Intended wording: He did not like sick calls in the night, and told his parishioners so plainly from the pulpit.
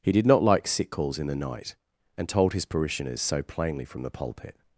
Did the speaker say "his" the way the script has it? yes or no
yes